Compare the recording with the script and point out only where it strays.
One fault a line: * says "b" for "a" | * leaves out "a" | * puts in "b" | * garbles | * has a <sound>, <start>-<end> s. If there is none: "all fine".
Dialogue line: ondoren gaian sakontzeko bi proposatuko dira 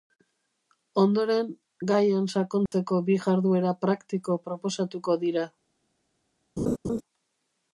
* has a dropout, 2.7-2.7 s
* puts in "jarduera praktiko"
* has a laugh, 6.6-7.0 s